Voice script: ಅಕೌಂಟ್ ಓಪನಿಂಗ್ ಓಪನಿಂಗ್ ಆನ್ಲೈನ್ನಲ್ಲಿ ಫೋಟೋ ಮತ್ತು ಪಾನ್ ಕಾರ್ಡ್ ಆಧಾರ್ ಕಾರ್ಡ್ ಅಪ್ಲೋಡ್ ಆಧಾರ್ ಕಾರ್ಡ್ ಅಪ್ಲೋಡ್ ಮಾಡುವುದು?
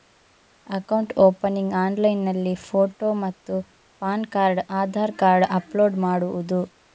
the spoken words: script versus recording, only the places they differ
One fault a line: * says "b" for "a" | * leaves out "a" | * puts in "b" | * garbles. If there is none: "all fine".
* leaves out "ಓಪನಿಂಗ್"
* leaves out "ಆಧಾರ್ ಕಾರ್ಡ್ ಅಪ್ಲೋಡ್"